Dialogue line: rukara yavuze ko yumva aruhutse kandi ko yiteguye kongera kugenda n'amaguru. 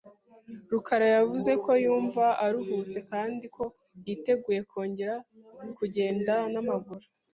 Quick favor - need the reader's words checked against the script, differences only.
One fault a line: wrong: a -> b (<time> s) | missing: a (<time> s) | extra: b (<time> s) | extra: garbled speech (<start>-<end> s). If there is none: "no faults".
no faults